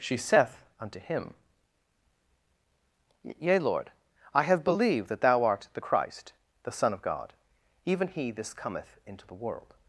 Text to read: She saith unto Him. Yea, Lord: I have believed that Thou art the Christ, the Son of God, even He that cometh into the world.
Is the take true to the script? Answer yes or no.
no